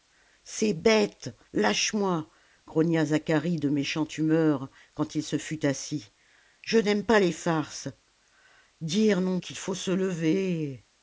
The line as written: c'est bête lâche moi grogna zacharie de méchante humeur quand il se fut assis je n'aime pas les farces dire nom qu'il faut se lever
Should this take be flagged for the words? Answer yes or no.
no